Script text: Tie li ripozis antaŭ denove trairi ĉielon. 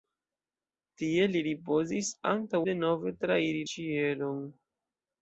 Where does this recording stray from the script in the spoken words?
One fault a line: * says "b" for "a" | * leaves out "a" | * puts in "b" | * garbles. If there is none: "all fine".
all fine